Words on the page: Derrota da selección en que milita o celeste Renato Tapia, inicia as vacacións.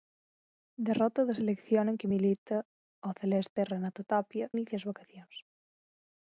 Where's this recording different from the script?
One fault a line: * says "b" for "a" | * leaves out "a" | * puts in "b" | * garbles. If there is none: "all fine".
all fine